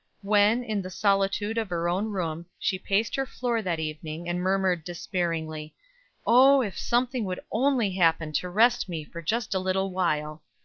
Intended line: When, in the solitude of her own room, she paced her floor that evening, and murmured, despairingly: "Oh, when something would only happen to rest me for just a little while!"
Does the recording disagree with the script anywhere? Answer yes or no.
yes